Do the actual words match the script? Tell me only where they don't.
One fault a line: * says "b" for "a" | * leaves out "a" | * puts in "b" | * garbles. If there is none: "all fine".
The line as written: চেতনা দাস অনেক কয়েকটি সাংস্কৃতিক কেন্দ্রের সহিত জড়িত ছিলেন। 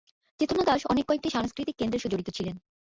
* leaves out "সহিত"